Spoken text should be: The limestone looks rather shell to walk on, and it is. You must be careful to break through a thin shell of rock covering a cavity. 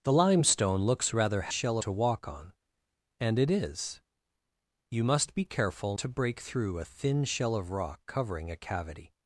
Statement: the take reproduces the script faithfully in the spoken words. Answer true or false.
true